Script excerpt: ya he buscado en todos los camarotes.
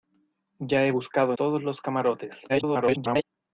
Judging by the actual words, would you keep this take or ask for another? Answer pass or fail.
fail